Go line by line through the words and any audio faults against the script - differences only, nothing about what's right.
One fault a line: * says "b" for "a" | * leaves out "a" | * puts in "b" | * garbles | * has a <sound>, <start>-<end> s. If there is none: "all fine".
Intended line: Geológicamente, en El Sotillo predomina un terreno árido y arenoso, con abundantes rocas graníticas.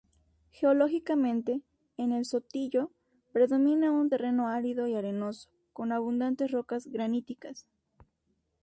all fine